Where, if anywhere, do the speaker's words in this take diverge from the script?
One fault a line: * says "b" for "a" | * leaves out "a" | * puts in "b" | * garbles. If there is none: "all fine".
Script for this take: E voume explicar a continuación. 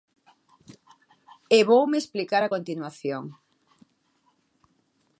all fine